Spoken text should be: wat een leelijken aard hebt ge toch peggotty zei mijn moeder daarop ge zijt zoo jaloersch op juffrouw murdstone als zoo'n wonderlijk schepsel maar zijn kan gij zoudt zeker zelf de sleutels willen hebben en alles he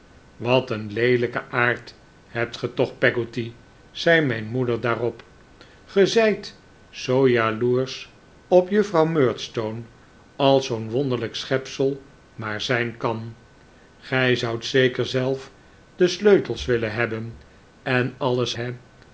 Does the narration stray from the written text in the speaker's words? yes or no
no